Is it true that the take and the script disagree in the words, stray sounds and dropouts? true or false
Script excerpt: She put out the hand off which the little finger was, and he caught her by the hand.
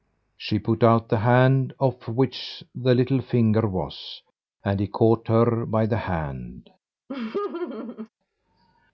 true